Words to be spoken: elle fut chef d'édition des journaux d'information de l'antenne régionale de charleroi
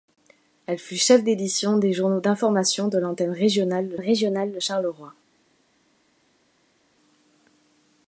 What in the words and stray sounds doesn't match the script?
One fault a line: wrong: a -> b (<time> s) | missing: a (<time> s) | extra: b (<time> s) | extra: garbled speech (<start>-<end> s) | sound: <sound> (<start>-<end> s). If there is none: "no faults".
extra: régionale de (4.0 s)